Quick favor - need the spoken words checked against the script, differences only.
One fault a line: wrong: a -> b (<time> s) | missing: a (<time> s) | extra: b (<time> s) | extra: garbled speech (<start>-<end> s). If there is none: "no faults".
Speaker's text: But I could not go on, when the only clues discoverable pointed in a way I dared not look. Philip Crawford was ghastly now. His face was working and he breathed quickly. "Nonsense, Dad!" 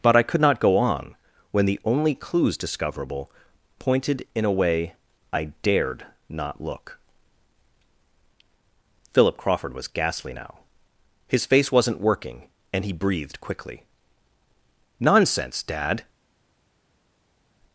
wrong: was -> wasn't (11.7 s)